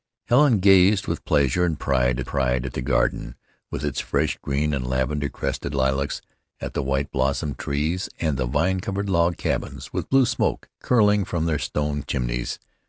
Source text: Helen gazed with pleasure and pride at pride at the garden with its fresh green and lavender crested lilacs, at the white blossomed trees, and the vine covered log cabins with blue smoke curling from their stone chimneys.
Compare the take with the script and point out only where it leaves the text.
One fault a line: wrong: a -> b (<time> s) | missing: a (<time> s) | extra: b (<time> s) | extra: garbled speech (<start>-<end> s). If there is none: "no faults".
no faults